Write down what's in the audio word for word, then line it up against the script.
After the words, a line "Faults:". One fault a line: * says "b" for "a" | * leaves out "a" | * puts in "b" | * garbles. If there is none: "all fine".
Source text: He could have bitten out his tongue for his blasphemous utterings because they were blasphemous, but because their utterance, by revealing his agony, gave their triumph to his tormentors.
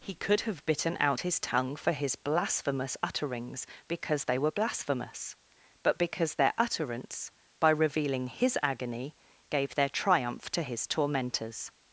He could have bitten out his tongue for his blasphemous utterings because they were blasphemous, but because their utterance, by revealing his agony, gave their triumph to his tormentors.
Faults:
all fine